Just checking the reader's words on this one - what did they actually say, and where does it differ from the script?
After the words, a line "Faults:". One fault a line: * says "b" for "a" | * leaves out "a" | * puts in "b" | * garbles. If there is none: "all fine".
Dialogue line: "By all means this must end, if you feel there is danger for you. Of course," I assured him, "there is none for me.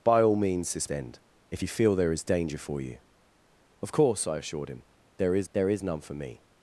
"By all means this end, if you feel there is danger for you. Of course," I assured him, "there is there is none for me.
Faults:
* leaves out "must"
* puts in "there is"